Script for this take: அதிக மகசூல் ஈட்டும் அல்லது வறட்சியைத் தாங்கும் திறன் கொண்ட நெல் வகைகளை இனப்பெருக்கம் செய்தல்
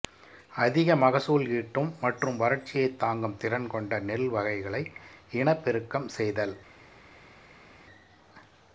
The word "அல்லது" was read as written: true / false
false